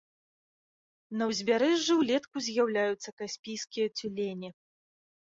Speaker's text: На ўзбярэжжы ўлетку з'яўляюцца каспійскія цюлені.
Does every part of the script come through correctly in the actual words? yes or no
yes